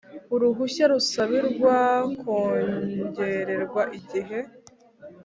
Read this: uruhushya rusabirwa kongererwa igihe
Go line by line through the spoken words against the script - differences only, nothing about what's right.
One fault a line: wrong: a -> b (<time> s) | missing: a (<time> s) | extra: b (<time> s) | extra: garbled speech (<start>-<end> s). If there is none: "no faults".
no faults